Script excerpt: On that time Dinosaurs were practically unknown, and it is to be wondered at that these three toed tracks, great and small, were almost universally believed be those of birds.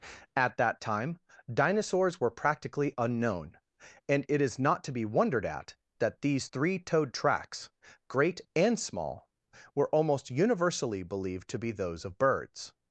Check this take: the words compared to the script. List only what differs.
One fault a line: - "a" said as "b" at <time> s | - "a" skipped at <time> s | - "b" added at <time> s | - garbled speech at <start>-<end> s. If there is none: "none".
- "On" said as "At" at 0.3 s
- "not" added at 4.6 s
- "to" added at 11.5 s